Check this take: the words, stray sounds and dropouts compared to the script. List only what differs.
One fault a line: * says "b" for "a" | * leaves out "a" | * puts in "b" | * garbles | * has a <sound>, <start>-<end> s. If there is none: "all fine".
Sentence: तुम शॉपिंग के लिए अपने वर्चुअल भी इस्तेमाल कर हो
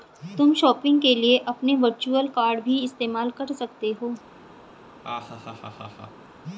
* puts in "कॉर्ड"
* puts in "सकते"
* has a laugh, 5.0-6.3 s